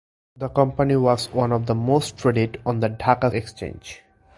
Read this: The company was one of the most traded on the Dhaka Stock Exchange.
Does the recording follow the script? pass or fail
fail